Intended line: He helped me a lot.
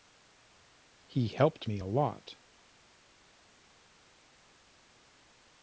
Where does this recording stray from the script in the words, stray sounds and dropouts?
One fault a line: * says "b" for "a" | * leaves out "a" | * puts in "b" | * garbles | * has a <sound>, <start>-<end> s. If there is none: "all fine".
all fine